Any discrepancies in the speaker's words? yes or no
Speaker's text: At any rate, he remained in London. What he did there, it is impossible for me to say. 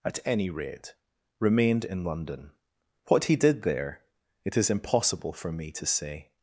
yes